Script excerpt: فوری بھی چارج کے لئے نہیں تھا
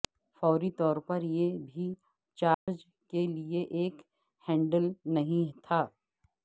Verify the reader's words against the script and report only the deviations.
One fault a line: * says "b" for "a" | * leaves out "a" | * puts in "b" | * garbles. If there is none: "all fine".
* puts in "طور پر یہ"
* puts in "ایک ہینڈل"